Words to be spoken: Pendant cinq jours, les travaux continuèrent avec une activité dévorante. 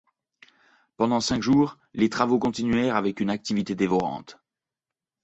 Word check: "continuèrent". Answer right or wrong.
right